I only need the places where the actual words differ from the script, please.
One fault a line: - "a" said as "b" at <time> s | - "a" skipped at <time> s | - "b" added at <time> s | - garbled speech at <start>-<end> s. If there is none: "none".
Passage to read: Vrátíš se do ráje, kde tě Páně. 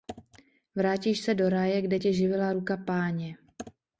- "živila ruka" added at 2.1 s